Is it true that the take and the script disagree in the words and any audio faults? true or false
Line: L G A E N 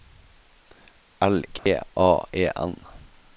true